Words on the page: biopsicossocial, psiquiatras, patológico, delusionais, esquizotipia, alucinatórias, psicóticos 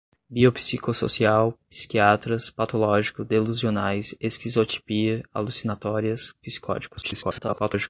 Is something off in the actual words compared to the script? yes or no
yes